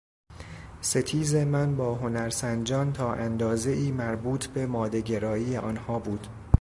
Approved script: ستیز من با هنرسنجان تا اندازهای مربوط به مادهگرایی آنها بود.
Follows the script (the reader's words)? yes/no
yes